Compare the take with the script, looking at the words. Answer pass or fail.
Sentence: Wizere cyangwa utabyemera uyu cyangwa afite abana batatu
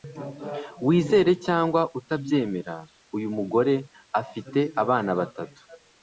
fail